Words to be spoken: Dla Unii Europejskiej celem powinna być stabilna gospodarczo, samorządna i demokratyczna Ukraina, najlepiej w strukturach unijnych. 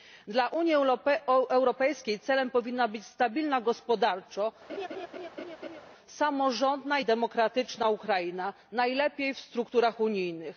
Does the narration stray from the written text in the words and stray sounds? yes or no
yes